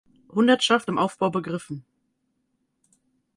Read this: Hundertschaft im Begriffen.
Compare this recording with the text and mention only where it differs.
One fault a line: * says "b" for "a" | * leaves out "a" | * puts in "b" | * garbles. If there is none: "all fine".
* puts in "Aufbau"